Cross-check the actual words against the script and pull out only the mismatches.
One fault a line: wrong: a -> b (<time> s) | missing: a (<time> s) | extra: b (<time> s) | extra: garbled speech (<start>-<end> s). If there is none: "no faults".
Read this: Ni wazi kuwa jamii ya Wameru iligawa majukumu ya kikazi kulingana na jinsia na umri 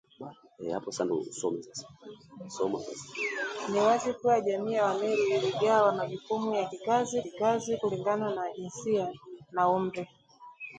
extra: kikazi (7.2 s)